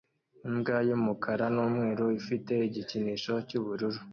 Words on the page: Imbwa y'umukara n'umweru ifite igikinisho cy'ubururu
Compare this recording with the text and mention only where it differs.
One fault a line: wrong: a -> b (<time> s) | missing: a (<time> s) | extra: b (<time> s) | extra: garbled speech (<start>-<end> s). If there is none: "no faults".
no faults